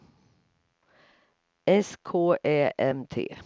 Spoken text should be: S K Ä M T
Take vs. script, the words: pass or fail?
pass